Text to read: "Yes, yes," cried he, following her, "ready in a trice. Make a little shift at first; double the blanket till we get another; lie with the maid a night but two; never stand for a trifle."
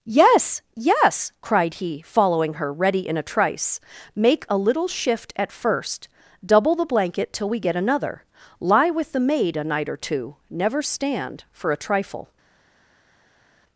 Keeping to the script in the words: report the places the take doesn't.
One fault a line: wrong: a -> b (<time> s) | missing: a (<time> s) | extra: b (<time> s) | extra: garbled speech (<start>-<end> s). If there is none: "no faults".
wrong: but -> or (9.9 s)